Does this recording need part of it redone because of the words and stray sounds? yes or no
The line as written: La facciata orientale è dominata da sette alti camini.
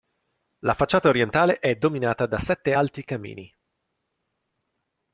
no